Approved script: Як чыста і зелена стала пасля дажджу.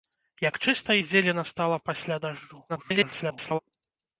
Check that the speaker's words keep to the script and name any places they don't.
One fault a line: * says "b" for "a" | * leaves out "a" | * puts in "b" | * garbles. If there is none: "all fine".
* garbles